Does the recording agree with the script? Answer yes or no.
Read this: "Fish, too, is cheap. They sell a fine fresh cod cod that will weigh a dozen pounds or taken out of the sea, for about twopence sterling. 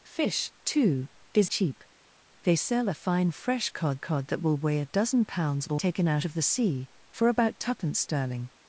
yes